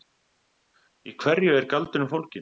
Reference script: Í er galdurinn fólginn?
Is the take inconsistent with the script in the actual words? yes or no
yes